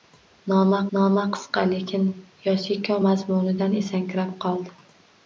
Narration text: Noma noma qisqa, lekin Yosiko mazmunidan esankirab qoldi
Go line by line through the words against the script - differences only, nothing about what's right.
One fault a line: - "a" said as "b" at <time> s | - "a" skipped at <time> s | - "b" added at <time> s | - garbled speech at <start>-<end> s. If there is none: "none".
none